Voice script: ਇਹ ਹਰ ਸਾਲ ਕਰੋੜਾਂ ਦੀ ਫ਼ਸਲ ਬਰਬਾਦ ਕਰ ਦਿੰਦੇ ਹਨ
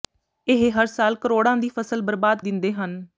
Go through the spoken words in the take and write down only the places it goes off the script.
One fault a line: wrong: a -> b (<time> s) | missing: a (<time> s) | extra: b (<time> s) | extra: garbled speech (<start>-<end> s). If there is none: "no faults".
missing: ਕਰ (2.4 s)